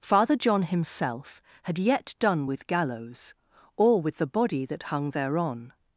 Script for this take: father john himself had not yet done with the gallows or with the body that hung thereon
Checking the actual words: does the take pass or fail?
fail